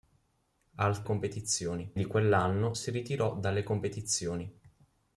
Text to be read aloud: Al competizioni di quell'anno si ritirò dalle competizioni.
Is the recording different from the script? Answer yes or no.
no